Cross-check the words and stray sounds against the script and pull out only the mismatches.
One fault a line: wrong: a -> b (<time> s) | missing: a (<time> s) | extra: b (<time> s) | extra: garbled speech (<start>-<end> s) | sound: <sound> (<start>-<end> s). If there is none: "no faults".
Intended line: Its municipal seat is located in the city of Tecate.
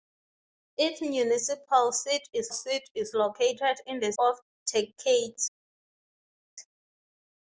extra: seat is (2.5 s)
missing: city (4.1 s)